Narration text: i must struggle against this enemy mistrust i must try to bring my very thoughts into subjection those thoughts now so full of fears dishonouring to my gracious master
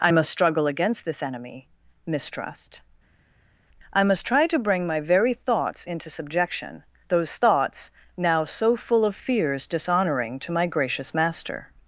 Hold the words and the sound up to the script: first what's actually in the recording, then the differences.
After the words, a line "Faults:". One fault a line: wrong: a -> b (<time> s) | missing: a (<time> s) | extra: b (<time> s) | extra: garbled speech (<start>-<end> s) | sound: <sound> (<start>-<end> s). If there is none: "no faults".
i must struggle against this enemy mistrust i must try to bring my very thoughts into subjection those thoughts now so full of fears dishonouring to my gracious master
Faults:
no faults